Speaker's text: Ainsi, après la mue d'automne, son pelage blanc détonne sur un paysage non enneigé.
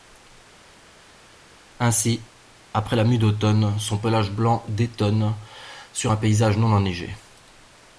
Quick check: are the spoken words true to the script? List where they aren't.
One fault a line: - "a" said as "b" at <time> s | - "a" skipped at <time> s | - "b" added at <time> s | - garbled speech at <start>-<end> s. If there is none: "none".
none